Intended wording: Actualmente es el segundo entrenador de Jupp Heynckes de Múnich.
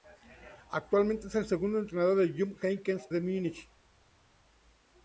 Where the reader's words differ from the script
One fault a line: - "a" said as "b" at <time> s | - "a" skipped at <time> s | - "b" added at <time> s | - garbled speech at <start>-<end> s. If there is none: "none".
none